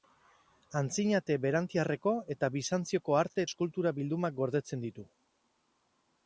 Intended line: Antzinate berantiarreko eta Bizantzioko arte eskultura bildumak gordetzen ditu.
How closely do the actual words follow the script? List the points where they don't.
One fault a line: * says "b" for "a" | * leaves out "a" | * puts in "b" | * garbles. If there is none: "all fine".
all fine